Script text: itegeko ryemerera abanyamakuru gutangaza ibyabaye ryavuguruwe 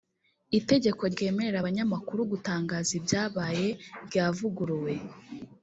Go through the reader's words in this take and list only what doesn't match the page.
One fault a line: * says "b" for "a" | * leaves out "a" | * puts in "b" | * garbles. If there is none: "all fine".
all fine